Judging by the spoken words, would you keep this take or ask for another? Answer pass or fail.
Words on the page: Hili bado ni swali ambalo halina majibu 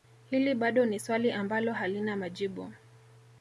pass